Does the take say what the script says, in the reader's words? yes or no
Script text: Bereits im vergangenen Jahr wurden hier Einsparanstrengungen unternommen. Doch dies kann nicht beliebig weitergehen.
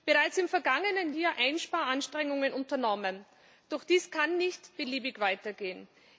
no